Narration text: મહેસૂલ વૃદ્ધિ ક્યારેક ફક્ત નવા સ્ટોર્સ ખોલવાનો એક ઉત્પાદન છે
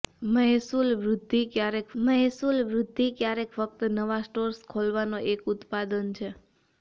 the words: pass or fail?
fail